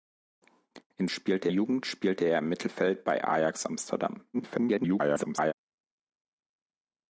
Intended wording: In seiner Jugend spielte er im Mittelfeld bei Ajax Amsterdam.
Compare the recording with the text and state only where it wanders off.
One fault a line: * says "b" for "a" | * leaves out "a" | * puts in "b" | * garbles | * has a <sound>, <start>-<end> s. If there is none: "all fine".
* says "spielte" for "seiner"
* garbles